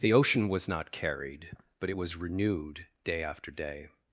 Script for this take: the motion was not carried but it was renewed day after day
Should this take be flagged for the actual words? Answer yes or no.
yes